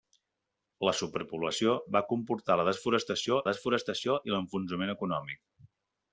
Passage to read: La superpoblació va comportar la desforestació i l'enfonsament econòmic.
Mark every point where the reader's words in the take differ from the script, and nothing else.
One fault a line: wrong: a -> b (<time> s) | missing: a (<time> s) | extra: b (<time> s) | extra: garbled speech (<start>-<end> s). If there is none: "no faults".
extra: desforestació (3.5 s)